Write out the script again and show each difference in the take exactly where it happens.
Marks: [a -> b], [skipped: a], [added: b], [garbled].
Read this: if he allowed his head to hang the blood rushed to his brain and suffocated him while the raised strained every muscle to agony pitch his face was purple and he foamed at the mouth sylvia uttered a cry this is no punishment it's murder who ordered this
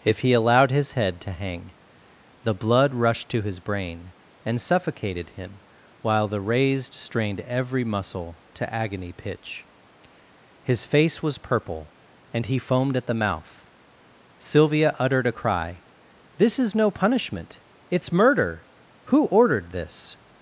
if he allowed his head to hang the blood rushed to his brain and suffocated him while the raised strained every muscle to agony pitch his face was purple and he foamed at the mouth sylvia uttered a cry this is no punishment it's murder who ordered this